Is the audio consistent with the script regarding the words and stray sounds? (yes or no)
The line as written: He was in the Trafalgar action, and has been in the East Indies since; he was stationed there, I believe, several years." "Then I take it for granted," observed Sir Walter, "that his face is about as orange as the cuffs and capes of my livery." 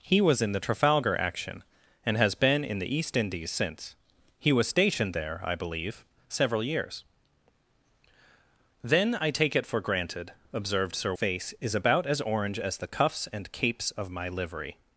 no